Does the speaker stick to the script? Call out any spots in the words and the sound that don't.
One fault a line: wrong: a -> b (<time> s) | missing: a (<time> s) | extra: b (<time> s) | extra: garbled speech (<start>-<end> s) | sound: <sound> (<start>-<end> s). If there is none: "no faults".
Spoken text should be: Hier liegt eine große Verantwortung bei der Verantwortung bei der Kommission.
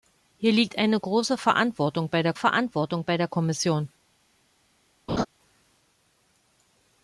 sound: laugh (5.1-5.3 s)